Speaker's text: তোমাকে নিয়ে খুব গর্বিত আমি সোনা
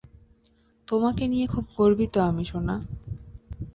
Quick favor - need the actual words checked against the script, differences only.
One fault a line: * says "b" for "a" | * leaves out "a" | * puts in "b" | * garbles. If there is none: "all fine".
all fine